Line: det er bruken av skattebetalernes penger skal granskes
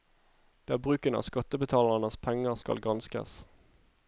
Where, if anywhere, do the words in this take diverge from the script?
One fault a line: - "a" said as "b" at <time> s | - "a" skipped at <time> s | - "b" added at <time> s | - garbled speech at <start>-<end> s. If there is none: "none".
none